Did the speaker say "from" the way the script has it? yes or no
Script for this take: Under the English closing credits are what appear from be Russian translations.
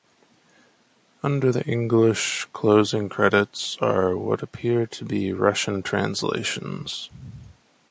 no